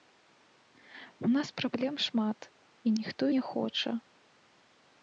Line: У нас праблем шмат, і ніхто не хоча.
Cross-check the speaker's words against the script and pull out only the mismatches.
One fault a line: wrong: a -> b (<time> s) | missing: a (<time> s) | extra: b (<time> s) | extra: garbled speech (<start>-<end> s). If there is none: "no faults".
no faults